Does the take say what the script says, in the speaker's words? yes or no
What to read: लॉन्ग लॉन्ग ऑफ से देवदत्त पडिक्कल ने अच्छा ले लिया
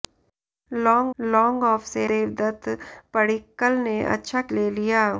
yes